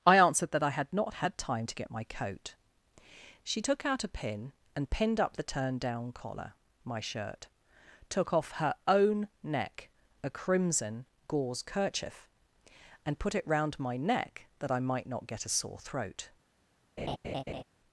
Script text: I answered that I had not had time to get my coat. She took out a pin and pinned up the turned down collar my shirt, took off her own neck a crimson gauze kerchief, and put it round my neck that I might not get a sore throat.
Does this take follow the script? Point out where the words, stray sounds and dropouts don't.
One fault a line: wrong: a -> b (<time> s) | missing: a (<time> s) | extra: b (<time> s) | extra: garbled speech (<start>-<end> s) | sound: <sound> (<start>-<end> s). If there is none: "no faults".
sound: laugh (17.0-17.6 s)